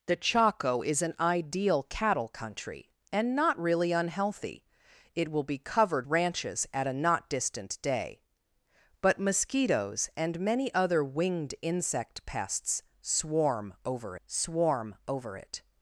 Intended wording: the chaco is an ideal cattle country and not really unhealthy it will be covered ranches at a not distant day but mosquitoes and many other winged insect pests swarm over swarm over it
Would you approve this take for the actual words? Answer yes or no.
yes